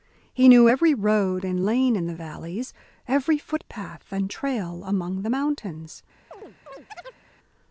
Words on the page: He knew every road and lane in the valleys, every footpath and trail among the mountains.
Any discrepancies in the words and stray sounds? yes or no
yes